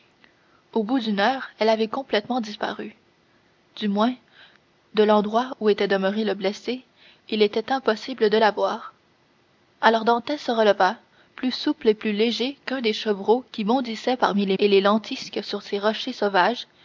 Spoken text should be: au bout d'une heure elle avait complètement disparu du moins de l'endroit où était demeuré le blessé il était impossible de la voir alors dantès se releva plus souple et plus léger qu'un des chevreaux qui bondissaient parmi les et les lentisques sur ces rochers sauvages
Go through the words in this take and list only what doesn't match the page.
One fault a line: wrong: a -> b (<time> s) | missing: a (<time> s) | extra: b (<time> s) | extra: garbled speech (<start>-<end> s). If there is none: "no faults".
no faults